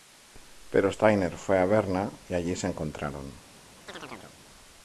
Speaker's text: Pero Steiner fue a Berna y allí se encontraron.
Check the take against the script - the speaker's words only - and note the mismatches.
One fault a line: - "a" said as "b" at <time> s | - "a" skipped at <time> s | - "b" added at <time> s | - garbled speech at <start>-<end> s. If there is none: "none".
none